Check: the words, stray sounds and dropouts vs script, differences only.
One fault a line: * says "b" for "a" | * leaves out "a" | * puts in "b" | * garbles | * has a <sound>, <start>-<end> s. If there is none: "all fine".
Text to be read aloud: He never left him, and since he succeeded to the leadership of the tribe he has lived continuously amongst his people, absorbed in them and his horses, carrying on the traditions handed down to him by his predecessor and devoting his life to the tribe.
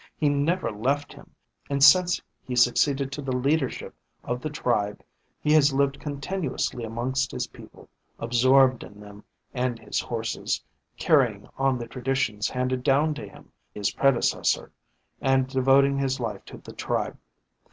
* leaves out "by"